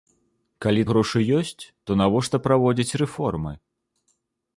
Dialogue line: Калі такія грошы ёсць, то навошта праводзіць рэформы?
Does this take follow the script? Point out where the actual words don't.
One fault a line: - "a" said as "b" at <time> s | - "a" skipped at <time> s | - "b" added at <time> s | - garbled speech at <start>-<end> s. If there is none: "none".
- "такія" skipped at 0.8 s